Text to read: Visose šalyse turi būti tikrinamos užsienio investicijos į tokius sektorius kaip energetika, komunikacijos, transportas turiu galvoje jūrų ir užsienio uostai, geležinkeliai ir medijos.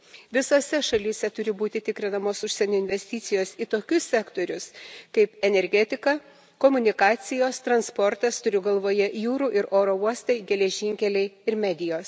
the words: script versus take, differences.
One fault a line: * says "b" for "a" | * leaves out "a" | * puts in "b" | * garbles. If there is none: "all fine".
* says "oro" for "užsienio"